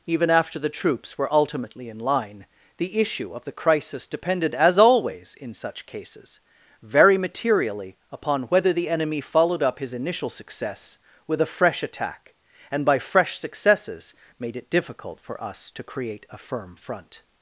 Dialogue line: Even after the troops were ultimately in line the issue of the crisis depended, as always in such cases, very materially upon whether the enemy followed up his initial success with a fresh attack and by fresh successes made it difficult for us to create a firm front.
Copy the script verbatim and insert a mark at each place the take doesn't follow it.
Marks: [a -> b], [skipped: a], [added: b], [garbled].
Even after the troops were ultimately in line the issue of the crisis depended, as always in such cases, very materially upon whether the enemy followed up his initial success with a fresh attack and by fresh successes made it difficult for us to create a firm front.